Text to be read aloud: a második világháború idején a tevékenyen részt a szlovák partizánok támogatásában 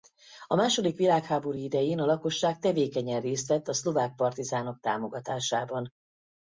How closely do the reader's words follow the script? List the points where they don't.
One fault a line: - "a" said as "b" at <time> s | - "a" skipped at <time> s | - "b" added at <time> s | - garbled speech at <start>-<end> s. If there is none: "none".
- "lakosság" added at 2.1 s
- "vett" added at 3.5 s